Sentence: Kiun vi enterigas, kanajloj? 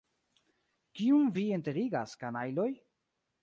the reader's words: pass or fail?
pass